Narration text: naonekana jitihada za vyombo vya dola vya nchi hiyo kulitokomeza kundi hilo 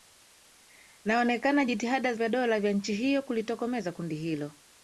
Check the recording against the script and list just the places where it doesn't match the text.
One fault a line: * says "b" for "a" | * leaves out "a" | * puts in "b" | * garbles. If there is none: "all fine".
* leaves out "za vyombo"